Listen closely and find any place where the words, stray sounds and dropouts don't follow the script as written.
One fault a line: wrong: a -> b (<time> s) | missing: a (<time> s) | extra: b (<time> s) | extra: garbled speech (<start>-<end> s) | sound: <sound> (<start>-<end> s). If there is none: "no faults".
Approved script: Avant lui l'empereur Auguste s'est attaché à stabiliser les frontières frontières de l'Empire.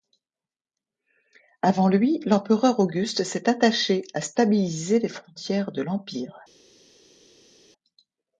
missing: frontières (5.7 s)